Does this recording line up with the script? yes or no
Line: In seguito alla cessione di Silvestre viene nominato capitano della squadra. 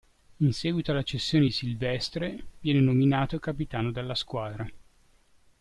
yes